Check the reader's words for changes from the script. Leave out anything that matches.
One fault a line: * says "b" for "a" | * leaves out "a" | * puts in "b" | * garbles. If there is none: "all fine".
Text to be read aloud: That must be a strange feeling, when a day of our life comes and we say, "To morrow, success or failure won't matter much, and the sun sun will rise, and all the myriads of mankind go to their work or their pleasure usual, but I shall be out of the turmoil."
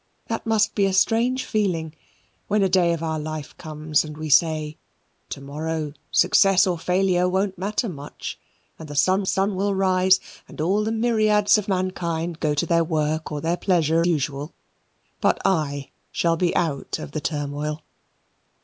all fine